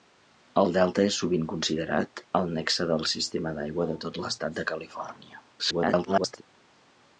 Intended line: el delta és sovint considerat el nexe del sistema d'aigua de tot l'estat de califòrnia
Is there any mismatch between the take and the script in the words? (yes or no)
yes